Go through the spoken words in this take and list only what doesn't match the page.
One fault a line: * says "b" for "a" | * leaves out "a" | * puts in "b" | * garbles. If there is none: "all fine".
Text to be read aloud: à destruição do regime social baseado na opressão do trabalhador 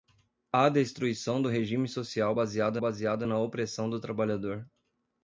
* puts in "baseado"